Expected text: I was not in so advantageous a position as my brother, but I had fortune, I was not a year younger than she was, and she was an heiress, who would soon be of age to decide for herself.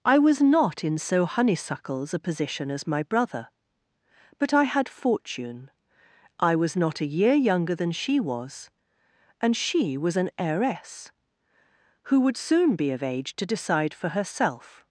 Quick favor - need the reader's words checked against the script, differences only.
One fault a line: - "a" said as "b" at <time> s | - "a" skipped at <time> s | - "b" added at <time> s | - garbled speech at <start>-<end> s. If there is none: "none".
- "advantageous" said as "honeysuckles" at 1.2 s